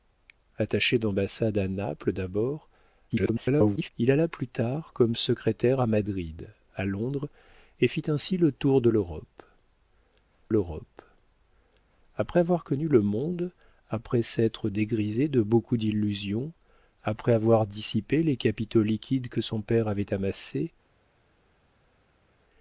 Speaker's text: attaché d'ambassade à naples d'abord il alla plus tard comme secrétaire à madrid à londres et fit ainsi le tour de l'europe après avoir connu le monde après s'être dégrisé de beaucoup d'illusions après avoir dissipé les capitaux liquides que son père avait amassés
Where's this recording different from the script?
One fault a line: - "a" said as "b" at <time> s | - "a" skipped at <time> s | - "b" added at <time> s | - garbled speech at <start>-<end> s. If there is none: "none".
- garbled speech at 3.1-3.9 s
- "l'europe" added at 10.5 s